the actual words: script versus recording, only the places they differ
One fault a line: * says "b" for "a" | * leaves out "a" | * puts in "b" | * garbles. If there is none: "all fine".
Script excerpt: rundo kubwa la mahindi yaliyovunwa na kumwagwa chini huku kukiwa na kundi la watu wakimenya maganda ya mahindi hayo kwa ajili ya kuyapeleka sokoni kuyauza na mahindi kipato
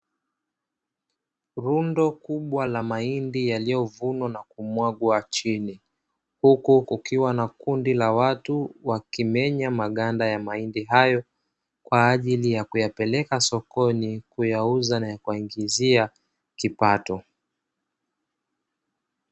* says "kuwaingizia" for "mahindi"